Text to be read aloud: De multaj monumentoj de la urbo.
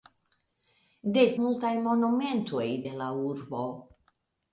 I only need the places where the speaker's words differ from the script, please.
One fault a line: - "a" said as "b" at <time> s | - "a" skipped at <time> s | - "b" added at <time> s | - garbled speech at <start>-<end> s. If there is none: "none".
none